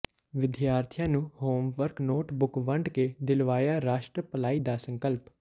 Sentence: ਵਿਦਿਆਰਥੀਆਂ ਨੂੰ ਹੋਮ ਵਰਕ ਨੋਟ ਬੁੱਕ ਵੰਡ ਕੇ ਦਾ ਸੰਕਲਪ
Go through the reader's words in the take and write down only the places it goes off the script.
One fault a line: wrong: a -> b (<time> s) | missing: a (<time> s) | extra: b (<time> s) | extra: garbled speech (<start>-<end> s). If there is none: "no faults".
extra: ਦਿਲਵਾਇਆ ਰਾਸ਼ਟਰ ਭਲਾਈ (3.2 s)